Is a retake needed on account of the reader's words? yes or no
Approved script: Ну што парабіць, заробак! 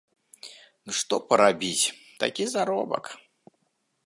yes